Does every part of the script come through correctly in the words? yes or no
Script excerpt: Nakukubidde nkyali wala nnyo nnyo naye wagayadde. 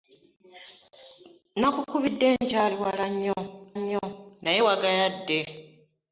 yes